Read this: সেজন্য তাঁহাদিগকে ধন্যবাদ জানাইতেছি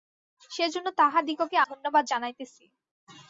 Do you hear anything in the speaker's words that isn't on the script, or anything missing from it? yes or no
no